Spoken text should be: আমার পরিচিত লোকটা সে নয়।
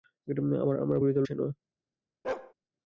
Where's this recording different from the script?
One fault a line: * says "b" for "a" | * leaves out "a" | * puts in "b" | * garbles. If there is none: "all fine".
* leaves out "লোকটা"